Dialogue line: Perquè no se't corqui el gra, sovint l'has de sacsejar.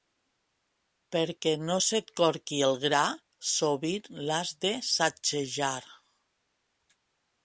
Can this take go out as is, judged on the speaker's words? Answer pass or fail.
pass